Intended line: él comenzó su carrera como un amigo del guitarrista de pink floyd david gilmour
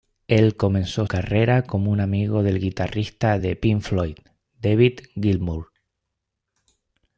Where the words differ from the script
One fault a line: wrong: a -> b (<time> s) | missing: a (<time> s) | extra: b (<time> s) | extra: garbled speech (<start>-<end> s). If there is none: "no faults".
missing: su (1.1 s)